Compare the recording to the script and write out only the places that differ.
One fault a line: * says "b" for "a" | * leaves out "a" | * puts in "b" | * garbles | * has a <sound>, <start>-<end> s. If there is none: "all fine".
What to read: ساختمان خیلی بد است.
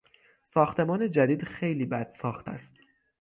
* puts in "جدید"
* puts in "ساخت"